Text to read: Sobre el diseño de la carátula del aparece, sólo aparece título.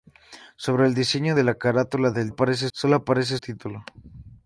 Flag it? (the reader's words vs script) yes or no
no